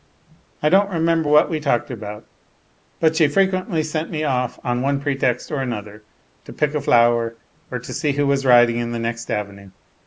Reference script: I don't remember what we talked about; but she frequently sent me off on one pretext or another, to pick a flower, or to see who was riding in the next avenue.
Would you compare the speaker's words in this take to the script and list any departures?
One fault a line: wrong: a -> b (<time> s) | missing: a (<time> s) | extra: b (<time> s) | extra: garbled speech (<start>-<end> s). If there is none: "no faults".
no faults